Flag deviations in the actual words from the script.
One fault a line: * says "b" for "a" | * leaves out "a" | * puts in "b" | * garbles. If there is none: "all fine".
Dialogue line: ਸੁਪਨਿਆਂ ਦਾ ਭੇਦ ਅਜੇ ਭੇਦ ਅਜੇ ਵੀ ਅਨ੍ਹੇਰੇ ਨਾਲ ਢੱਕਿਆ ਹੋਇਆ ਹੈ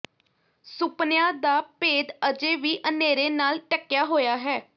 * leaves out "ਭੇਦ ਅਜੇ"